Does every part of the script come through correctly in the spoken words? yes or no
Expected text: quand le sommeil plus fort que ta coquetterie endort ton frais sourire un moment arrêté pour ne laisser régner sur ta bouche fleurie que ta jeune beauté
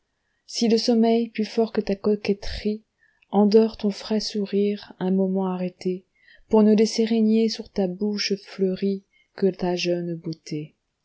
no